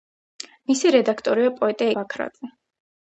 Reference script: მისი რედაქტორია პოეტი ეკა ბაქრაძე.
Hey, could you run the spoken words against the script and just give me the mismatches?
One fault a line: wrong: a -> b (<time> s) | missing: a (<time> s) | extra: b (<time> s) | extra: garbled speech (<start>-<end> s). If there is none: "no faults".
missing: ეკა (1.9 s)